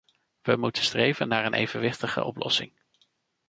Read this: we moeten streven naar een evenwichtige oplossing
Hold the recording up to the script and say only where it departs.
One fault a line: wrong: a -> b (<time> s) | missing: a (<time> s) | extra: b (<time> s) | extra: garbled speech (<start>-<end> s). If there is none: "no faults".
no faults